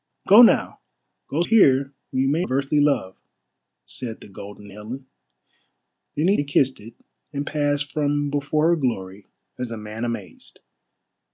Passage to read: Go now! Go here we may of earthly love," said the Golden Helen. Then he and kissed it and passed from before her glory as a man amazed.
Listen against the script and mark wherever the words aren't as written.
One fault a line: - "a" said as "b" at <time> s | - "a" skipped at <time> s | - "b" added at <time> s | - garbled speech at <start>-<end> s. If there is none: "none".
none